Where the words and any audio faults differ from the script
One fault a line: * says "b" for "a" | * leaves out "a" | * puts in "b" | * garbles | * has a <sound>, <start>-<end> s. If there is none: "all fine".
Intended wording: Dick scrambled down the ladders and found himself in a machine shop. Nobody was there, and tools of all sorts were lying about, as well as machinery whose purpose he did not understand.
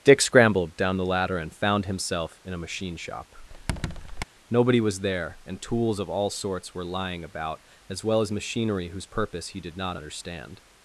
* says "ladder" for "ladders"
* has a squeak, 3.5-4.2 s